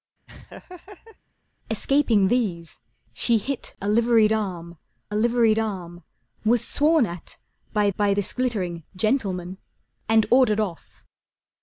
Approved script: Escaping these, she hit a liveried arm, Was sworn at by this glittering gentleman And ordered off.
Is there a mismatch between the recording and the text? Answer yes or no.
yes